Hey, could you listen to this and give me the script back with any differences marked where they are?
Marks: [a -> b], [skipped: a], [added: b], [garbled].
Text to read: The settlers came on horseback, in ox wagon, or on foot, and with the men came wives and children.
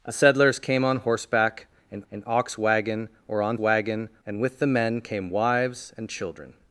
The settlers came on horseback, in [added: in] ox wagon, or on [foot, -> wagon] and with the men came wives and children.